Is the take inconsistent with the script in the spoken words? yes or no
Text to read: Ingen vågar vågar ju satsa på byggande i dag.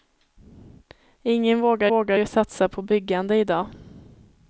no